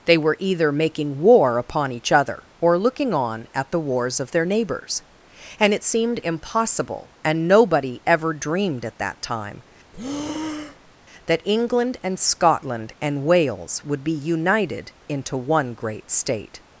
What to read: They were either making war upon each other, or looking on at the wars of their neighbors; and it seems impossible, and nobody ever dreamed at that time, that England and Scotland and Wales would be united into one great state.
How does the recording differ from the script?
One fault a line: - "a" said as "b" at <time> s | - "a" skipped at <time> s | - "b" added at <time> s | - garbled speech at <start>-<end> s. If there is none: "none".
- "seems" said as "seemed" at 5.8 s